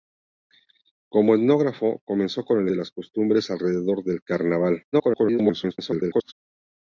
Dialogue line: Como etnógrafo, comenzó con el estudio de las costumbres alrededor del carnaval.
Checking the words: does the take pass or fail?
fail